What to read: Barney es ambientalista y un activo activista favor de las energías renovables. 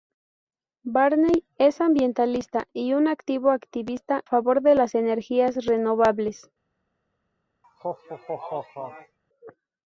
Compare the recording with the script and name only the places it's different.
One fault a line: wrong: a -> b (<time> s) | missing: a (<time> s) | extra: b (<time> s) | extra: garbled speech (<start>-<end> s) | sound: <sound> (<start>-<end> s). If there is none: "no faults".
sound: laugh (7.6-9.2 s)